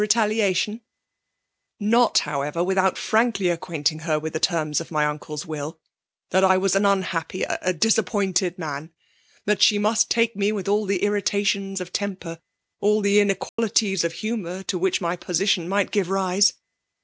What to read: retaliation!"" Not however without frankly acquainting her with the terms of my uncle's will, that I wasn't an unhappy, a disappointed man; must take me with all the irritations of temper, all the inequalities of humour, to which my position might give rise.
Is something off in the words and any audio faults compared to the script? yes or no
yes